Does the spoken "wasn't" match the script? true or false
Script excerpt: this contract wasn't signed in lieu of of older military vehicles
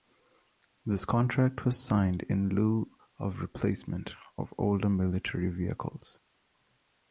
false